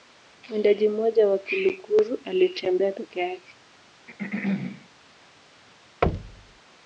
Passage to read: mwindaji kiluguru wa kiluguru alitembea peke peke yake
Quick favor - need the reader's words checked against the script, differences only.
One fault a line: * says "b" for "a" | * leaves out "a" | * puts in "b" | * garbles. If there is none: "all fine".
* says "mmoja" for "kiluguru"
* leaves out "peke"